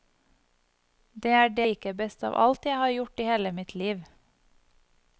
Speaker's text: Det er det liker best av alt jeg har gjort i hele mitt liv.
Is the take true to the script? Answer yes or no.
yes